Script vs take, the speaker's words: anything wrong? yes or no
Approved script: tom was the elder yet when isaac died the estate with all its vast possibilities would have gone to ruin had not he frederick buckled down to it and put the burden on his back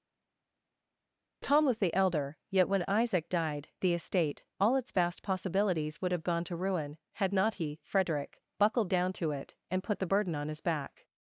yes